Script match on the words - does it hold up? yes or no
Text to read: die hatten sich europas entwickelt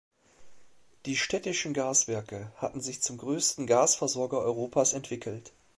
no